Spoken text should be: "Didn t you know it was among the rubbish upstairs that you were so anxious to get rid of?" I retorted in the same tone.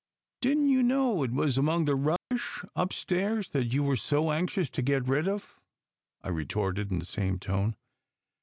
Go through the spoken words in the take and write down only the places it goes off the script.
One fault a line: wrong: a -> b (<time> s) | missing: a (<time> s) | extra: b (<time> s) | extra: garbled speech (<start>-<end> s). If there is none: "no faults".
no faults